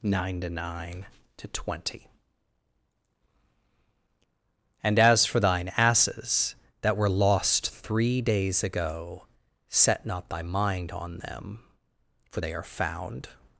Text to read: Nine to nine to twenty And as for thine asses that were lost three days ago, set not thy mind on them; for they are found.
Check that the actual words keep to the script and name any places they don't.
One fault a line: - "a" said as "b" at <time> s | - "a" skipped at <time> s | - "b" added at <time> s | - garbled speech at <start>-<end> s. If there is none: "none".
none